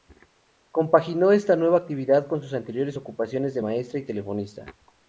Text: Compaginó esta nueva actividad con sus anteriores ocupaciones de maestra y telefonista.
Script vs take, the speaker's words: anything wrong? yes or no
no